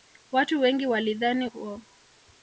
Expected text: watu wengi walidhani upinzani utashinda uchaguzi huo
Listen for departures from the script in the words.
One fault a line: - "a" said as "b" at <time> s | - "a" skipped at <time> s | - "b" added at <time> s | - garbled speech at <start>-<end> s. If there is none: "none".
- "upinzani utashinda uchaguzi" skipped at 1.5 s